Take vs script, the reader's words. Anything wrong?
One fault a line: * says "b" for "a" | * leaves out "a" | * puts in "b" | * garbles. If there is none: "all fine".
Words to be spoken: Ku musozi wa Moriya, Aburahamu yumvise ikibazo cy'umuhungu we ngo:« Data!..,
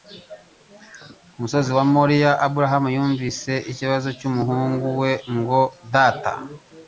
all fine